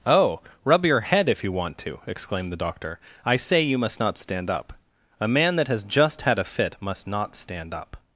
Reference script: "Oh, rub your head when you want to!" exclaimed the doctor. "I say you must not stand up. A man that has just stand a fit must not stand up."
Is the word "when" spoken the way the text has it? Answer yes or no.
no